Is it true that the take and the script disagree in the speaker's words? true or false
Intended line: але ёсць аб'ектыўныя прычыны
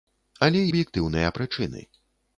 true